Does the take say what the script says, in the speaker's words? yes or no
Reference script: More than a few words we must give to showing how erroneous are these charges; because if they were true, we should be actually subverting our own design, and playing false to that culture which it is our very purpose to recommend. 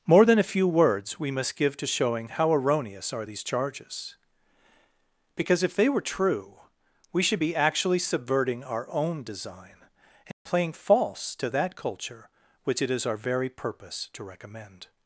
yes